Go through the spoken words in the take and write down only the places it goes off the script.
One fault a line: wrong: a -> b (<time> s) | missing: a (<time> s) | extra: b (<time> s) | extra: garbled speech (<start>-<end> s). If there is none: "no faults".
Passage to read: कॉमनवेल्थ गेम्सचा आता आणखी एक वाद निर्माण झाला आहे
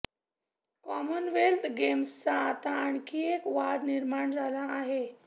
no faults